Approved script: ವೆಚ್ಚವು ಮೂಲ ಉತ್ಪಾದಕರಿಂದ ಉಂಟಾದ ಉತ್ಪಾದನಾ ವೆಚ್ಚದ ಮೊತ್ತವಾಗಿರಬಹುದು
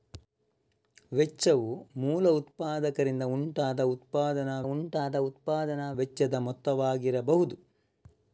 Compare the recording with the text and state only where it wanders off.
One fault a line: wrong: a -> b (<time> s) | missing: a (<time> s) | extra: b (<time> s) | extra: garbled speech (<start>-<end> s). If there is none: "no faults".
extra: ಉಂಟಾದ ಉತ್ಪಾದನಾ (4.6 s)